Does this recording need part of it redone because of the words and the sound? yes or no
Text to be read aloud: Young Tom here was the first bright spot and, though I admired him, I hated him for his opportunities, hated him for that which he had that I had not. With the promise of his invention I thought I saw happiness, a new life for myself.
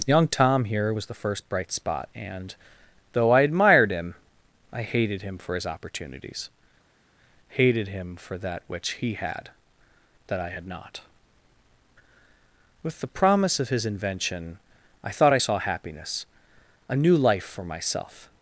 no